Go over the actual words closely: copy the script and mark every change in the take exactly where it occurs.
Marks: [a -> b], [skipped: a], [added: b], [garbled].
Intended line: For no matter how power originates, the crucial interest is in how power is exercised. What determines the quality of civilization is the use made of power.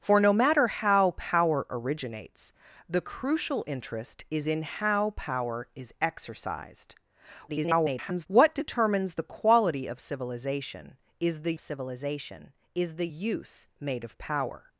For no matter how power originates, the crucial interest is in how power is exercised. [garbled] What determines the quality of civilization is the [added: civilization is the] use made of power.